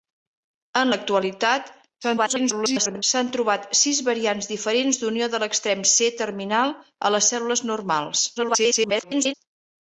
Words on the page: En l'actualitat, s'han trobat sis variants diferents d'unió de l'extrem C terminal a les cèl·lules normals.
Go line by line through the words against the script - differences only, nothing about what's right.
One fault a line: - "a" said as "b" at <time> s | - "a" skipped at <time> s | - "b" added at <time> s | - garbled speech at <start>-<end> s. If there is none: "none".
- garbled speech at 2.0-3.0 s
- garbled speech at 8.4-9.3 s